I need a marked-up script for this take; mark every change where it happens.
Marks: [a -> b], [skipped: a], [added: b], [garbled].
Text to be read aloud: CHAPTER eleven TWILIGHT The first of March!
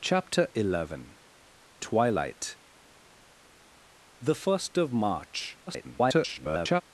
CHAPTER eleven TWILIGHT The first of March! [garbled]